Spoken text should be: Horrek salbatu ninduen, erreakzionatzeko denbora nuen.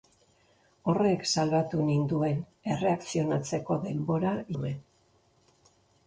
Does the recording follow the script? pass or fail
pass